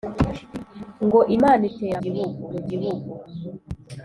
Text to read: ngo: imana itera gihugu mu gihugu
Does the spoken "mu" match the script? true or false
true